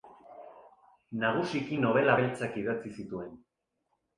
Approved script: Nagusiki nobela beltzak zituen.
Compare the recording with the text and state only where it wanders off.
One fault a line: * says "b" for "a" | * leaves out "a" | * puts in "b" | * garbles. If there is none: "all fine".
* puts in "idatzi"